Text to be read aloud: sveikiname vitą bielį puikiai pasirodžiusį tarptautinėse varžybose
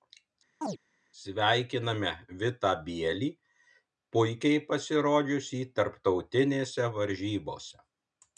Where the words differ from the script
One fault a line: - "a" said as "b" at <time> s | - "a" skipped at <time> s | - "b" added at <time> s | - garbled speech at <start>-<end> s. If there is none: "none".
none